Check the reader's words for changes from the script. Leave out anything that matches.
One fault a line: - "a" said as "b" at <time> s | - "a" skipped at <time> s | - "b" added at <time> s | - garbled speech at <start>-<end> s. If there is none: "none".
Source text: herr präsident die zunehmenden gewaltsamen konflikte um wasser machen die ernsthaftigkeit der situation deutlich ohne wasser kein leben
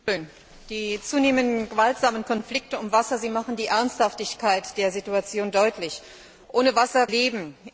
- "kein" skipped at 7.1 s